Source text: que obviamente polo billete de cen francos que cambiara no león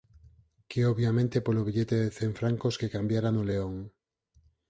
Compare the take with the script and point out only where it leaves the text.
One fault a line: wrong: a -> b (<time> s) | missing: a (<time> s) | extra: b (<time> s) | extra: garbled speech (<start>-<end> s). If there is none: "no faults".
no faults